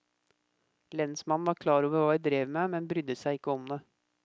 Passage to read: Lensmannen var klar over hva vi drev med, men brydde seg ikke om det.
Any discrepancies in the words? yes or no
no